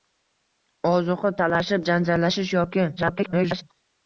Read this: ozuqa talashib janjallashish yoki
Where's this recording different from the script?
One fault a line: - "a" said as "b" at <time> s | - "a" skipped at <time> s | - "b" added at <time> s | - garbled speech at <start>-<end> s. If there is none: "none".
- garbled speech at 3.0-3.6 s